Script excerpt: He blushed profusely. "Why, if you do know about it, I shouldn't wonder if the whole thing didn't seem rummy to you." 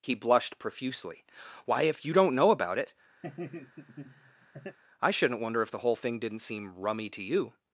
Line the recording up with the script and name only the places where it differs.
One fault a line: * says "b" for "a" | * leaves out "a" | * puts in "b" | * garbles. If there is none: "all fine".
* says "don't" for "do"